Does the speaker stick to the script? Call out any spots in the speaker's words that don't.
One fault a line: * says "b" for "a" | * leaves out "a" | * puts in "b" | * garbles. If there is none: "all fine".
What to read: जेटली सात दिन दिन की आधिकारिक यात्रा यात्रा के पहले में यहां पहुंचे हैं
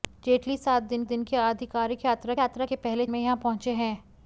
all fine